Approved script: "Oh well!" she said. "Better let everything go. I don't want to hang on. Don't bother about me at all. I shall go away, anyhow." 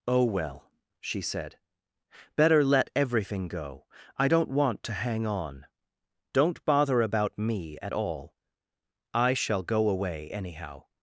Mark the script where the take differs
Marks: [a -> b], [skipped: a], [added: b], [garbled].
"Oh well!" she said. "Better let everything go. I don't want to hang on. Don't bother about me at all. I shall go away, anyhow."